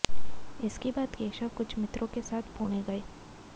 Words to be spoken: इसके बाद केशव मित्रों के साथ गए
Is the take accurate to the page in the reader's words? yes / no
no